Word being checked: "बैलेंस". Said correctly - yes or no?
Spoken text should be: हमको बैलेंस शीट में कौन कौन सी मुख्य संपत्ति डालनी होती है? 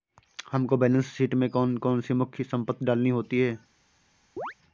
yes